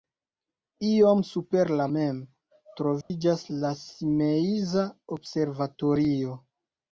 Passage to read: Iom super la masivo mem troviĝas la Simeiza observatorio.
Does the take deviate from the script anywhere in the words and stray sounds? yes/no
yes